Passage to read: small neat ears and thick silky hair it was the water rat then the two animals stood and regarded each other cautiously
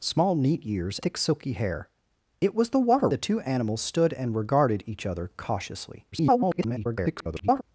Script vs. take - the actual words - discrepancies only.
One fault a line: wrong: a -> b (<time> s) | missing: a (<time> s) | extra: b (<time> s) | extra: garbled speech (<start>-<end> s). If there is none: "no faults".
missing: and (1.0 s)
missing: rat then (3.1 s)
extra: garbled speech (6.1-7.6 s)